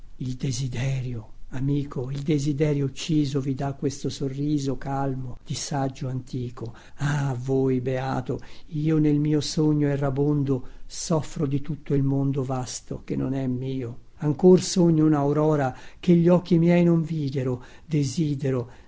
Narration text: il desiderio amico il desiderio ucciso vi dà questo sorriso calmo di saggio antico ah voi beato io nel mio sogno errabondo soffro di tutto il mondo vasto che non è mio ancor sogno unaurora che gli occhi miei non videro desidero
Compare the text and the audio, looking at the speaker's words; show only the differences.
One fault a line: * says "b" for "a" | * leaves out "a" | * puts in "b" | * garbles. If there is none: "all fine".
all fine